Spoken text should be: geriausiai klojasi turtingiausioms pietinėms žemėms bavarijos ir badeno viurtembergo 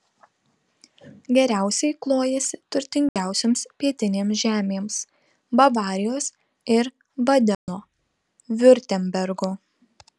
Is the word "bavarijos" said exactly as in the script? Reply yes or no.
yes